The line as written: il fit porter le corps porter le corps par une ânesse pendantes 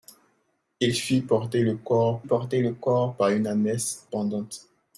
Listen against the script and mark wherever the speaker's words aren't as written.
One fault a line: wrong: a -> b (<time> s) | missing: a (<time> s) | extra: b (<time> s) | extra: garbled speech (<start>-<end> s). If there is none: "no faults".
no faults